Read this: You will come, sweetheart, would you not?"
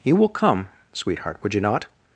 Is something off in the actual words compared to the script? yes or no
no